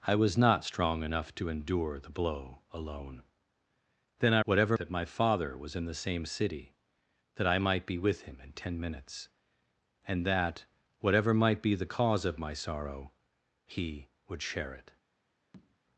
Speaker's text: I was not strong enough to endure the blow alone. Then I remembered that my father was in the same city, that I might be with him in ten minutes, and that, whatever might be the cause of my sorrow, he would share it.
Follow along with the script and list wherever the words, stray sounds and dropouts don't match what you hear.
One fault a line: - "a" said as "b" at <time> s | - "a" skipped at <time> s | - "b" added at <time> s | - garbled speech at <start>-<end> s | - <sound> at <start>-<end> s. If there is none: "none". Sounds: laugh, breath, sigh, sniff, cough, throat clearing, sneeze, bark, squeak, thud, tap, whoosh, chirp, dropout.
- "remembered" said as "whatever" at 4.4 s
- tap at 15.5-15.8 s